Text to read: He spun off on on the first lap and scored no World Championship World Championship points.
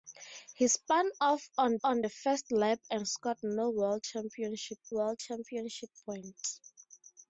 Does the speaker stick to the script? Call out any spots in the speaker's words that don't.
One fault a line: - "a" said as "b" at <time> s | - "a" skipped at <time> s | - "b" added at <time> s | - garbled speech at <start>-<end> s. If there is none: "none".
none